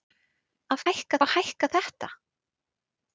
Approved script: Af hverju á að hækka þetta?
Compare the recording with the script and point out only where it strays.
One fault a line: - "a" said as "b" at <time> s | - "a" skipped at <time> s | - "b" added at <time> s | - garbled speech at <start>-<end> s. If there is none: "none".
- "hverju" said as "hækka" at 0.9 s